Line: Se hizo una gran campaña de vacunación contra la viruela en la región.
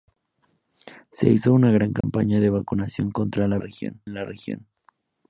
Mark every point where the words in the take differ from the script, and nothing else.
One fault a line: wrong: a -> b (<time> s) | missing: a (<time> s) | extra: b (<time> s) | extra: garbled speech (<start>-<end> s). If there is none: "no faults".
wrong: viruela -> región (3.6 s)